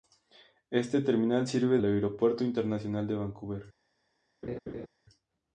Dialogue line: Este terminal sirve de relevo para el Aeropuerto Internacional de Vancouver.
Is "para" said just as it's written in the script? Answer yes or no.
no